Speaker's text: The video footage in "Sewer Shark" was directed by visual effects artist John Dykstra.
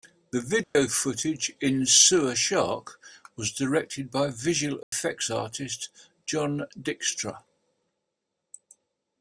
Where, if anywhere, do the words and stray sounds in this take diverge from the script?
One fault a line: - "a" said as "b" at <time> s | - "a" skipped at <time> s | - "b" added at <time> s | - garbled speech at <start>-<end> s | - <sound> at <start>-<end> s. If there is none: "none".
- dropout at 0.6-0.8 s
- dropout at 4.8-4.9 s